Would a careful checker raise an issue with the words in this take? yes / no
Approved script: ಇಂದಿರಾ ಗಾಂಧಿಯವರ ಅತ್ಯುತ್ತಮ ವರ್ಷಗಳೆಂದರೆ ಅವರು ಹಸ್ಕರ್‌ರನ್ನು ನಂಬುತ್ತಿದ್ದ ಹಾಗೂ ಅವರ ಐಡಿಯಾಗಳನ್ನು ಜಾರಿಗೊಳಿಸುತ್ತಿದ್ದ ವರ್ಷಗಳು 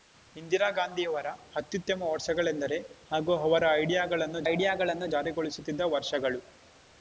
yes